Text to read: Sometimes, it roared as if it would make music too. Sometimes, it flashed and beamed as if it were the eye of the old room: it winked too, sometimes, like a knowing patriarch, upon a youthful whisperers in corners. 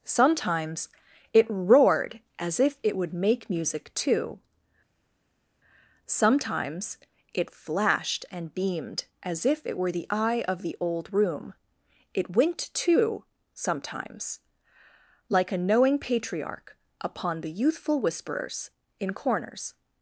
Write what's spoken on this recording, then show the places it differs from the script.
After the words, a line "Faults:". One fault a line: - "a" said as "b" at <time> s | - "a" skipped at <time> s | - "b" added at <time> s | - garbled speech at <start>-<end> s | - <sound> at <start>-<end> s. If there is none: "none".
Sometimes, it roared as if it would make music too. Sometimes, it flashed and beamed as if it were the eye of the old room: it winked too, sometimes, like a knowing patriarch, upon the youthful whisperers in corners.
Faults:
- "a" said as "the" at 17.4 s